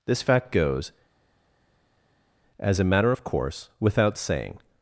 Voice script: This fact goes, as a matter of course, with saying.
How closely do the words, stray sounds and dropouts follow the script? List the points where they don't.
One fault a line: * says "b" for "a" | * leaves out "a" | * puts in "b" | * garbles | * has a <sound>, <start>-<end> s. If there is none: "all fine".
* says "without" for "with"